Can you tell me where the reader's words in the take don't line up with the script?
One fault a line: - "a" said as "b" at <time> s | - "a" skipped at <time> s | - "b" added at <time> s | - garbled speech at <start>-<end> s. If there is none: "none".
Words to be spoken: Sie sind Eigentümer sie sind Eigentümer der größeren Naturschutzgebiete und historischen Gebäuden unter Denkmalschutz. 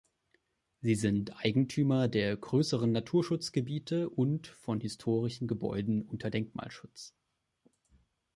- "sie sind Eigentümer" skipped at 2.1 s
- "von" added at 4.5 s